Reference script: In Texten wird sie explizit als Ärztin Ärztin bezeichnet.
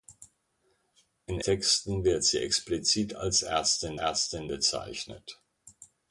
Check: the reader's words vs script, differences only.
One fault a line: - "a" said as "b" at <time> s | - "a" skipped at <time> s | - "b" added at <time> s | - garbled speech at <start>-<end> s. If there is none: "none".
none